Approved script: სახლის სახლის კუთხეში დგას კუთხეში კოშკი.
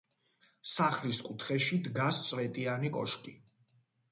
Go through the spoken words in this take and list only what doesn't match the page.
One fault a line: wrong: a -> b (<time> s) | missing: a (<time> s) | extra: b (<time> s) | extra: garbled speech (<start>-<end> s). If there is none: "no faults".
missing: სახლის (1.2 s)
wrong: კუთხეში -> წვეტიანი (2.3 s)